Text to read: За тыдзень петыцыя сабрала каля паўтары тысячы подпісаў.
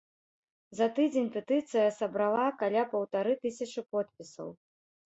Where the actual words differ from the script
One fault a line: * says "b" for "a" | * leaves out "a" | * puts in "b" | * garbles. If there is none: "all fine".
all fine